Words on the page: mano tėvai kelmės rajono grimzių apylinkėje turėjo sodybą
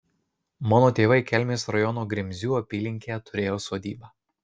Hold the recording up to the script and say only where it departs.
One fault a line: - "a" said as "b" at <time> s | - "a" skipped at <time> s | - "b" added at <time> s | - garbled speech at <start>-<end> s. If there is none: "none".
none